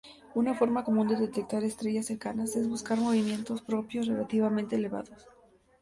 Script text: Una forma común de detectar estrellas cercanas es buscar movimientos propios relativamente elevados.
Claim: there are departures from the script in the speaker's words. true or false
false